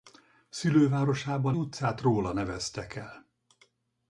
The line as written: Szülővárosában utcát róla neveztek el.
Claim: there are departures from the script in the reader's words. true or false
false